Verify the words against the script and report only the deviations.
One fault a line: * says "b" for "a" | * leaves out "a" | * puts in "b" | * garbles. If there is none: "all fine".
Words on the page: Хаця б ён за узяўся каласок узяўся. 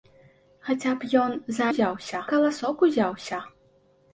all fine